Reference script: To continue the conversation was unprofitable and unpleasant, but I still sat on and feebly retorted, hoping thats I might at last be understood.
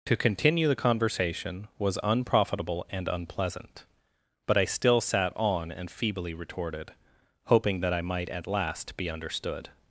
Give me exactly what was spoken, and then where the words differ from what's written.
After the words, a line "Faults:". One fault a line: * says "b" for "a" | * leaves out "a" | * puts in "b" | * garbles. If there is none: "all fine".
To continue the conversation was unprofitable and unpleasant, but I still sat on and feebly retorted, hoping that I might at last be understood.
Faults:
* says "that" for "thats"